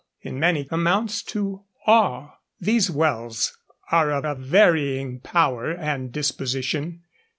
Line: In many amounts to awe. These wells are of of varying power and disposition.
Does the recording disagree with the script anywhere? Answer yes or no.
no